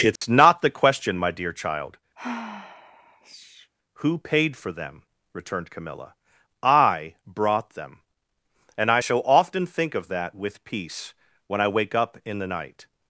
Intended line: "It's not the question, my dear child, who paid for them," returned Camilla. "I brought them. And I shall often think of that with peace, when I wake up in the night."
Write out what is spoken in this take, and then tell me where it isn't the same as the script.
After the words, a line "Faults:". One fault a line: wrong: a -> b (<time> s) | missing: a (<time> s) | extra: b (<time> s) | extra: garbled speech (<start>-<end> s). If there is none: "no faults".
"It's not the question, my dear child, who paid for them," returned Camilla. "I brought them. And I shall often think of that with peace, when I wake up in the night."
Faults:
no faults